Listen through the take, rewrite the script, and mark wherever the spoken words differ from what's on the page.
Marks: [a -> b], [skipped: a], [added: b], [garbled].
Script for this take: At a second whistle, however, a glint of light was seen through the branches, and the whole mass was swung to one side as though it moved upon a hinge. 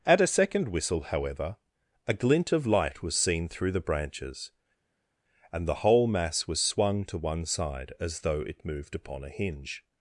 At a second whistle, however, a glint of light was seen through the branches, and the whole mass was swung to one side as though it moved upon a hinge.